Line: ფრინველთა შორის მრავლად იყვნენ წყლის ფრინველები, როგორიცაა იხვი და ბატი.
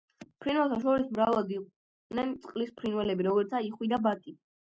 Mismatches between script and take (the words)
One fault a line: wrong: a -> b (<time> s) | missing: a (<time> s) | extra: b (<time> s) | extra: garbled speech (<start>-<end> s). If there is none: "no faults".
no faults